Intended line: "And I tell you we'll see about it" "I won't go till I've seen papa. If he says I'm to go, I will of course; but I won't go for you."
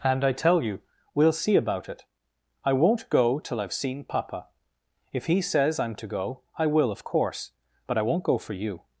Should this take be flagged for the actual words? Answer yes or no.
no